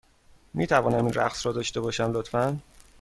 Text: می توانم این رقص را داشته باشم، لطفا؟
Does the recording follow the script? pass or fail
pass